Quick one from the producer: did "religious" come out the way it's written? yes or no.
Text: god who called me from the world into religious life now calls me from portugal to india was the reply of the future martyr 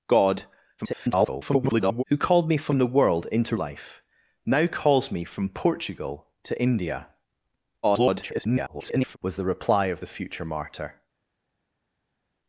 no